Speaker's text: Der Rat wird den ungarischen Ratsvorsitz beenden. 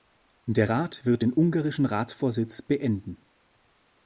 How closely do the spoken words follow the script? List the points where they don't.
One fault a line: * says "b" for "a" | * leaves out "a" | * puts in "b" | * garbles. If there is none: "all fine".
all fine